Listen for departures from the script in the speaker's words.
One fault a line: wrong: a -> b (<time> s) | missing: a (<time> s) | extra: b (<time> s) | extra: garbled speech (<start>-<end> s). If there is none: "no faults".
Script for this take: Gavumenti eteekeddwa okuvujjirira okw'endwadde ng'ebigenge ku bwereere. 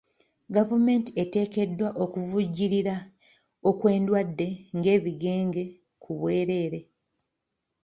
no faults